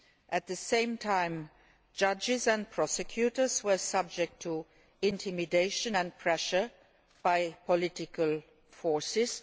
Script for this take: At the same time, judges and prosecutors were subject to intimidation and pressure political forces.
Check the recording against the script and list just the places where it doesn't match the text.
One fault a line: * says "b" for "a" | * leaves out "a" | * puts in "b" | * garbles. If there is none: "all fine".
* puts in "by"